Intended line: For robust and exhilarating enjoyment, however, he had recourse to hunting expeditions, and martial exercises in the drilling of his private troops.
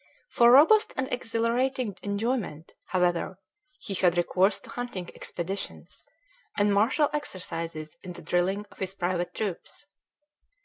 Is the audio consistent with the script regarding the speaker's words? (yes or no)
yes